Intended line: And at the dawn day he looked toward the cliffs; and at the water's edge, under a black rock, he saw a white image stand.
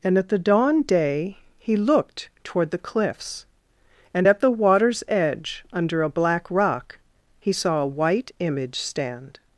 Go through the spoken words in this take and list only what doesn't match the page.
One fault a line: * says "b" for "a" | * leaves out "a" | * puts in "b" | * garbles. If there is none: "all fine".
all fine